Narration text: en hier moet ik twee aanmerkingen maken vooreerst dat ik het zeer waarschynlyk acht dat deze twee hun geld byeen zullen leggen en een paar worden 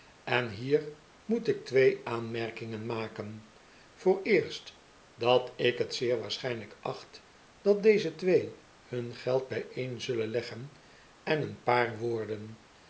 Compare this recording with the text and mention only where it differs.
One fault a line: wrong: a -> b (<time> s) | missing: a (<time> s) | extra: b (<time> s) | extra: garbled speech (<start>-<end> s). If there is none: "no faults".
no faults